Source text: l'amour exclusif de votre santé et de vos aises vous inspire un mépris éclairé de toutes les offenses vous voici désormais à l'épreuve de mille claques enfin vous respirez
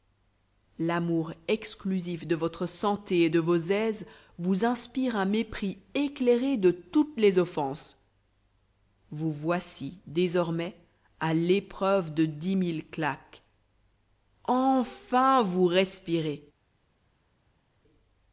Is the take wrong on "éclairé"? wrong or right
right